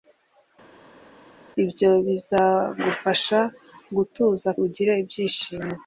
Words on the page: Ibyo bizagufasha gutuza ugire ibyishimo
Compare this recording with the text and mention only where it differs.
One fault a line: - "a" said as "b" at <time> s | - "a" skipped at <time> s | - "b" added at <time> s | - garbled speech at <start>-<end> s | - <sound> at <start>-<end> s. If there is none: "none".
none